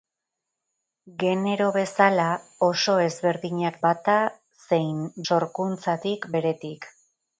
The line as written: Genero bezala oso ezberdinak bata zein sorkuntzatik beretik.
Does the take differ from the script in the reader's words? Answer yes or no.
no